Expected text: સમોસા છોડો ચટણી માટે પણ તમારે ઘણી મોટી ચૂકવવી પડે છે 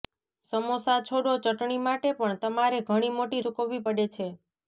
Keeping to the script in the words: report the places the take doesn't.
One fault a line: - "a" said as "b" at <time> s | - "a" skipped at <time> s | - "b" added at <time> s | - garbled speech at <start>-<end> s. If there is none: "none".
none